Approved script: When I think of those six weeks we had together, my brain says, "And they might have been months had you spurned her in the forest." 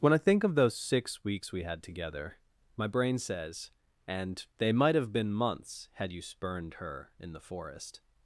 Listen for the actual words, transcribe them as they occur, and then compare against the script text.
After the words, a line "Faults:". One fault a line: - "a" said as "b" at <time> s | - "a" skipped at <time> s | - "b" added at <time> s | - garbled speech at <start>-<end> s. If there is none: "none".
When I think of those six weeks we had together, my brain says, "And they might have been months had you spurned her in the forest."
Faults:
none